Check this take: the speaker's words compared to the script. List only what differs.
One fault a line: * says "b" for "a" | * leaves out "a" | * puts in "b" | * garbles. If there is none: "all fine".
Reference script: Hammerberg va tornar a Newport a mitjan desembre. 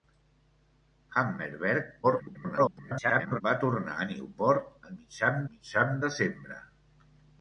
* garbles
* puts in "mitjan"